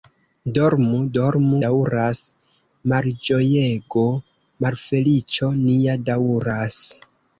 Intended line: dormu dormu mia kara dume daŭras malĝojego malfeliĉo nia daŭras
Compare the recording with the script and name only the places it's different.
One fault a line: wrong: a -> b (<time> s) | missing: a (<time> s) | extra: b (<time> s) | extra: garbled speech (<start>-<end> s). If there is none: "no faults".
missing: mia kara dume (1.6 s)